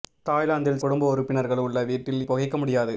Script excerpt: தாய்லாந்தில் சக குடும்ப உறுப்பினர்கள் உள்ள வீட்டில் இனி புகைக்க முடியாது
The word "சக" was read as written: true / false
false